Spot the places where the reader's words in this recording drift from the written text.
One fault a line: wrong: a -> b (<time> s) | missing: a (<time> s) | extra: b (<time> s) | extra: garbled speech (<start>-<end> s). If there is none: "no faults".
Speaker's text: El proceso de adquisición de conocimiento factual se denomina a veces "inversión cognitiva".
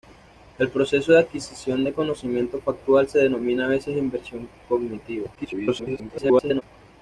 extra: garbled speech (5.4-6.6 s)